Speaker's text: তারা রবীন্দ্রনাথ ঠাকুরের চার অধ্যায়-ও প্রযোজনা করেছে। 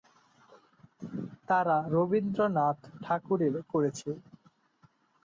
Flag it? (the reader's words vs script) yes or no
yes